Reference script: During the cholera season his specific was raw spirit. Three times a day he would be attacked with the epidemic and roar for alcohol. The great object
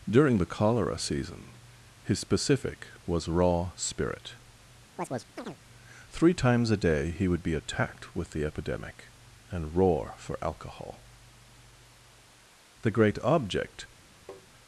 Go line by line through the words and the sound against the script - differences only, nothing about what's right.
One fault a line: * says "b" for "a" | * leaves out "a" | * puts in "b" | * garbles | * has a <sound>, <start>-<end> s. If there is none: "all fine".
* has a chirp, 5.0-5.6 s
* has a tap, 14.3-14.5 s